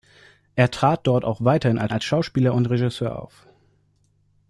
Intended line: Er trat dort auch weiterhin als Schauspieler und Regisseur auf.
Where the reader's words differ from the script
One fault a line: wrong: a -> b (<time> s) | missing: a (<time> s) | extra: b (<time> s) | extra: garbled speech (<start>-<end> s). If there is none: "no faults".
extra: als (1.9 s)